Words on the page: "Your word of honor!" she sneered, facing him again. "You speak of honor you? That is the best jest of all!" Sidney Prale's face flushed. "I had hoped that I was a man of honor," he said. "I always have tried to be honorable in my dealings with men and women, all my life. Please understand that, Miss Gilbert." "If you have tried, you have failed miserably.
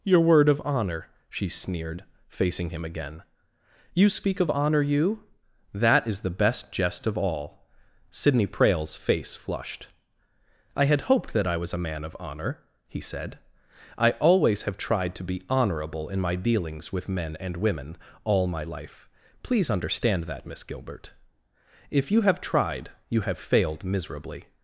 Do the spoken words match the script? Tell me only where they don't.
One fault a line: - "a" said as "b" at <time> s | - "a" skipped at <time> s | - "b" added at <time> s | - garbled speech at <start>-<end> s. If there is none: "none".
none